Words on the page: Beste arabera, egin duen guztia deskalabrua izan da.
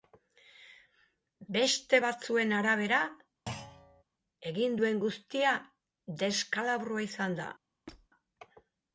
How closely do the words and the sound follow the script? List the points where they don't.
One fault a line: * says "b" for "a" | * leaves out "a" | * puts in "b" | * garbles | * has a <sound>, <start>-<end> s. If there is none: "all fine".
* puts in "batzuen"
* has a thud, 3.5-4.0 s
* has a squeak, 7.9-8.1 s